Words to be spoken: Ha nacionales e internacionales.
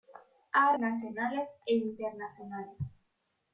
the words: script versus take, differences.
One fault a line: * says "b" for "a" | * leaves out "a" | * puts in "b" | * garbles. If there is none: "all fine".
all fine